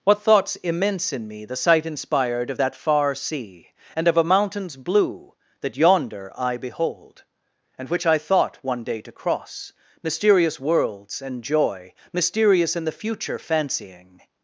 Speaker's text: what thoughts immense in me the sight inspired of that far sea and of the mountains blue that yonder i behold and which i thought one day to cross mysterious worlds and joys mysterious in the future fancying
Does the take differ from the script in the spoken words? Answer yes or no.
yes